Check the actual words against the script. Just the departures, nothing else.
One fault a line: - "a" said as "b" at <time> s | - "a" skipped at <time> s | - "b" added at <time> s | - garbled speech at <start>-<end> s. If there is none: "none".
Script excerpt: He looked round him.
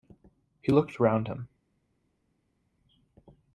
none